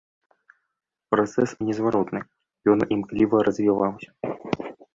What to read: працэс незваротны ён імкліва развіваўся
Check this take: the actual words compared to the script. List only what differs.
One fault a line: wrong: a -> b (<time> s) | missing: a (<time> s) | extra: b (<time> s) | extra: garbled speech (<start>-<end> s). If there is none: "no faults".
no faults